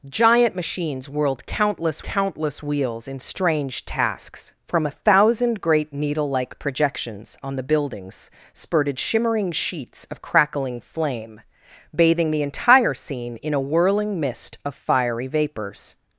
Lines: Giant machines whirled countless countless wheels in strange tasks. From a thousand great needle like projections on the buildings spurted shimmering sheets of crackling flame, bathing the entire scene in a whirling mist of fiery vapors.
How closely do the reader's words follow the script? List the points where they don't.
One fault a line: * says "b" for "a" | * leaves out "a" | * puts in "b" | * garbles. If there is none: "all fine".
all fine